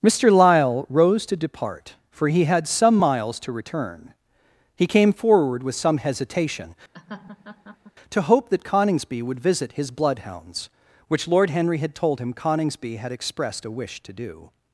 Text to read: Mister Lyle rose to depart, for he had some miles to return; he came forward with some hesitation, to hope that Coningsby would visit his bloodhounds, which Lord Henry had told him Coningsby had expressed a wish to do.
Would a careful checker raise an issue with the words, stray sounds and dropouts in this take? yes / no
yes